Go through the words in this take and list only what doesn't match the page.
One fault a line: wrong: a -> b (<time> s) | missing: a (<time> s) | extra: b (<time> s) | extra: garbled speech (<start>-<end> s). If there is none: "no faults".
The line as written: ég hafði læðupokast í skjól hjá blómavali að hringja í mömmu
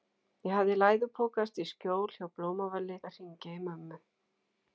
no faults